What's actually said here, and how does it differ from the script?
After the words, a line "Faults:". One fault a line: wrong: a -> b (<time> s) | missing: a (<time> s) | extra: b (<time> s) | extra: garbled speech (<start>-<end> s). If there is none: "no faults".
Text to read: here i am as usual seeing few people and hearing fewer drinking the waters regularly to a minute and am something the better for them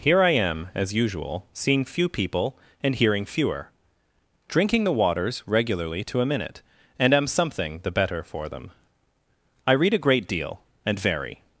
here i am as usual seeing few people and hearing fewer drinking the waters regularly to a minute and am something the better for them i read a great deal and vary
Faults:
extra: i read a great deal and vary (9.7 s)